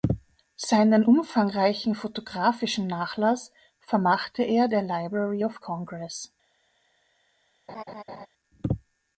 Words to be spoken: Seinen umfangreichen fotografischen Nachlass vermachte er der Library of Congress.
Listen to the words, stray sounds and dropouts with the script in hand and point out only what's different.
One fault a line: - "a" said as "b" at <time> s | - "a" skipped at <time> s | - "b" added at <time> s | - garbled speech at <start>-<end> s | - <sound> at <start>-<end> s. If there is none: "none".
- laugh at 7.7-8.3 s